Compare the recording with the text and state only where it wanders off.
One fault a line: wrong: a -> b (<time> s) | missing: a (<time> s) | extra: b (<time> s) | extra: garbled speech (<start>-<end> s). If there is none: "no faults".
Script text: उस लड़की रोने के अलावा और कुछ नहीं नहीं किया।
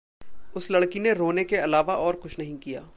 extra: ने (1.0 s)
missing: नहीं (2.6 s)